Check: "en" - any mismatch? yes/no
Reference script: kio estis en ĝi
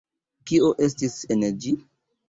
no